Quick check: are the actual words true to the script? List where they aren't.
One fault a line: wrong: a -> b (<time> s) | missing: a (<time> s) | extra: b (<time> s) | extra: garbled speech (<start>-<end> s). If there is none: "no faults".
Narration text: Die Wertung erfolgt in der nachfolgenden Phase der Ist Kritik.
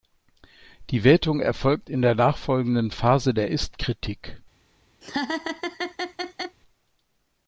no faults